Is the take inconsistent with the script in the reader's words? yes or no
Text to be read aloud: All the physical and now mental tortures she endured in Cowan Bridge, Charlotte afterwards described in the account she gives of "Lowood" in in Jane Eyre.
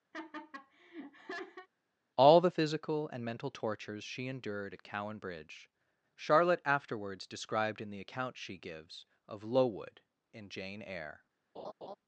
yes